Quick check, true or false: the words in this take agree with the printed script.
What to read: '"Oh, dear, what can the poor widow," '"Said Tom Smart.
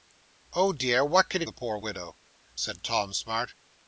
true